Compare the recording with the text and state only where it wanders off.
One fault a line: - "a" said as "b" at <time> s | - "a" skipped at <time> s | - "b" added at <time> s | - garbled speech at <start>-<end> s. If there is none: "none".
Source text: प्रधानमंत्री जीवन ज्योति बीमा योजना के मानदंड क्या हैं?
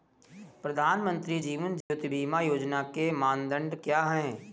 none